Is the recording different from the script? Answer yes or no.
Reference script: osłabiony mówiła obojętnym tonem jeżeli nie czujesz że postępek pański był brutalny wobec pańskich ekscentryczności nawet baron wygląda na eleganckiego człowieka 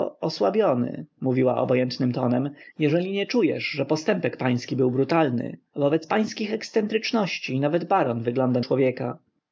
yes